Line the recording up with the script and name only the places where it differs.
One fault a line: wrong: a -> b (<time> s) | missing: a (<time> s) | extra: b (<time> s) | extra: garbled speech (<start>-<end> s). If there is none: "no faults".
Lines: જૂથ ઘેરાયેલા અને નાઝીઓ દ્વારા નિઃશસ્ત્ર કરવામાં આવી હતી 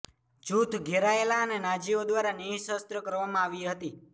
no faults